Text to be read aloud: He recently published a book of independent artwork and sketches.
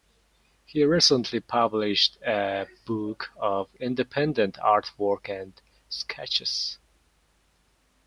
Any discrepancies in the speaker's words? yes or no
no